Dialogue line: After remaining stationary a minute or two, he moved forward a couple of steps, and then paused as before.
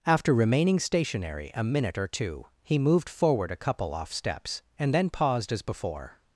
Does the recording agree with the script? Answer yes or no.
no